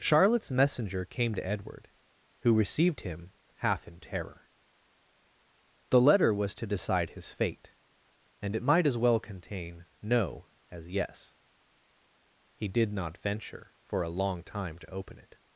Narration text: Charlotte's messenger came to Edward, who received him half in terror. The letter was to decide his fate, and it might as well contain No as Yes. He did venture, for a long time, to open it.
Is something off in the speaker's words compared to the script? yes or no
yes